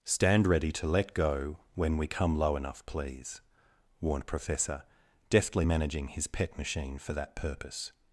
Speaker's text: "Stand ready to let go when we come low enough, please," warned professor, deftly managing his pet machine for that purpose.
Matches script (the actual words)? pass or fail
pass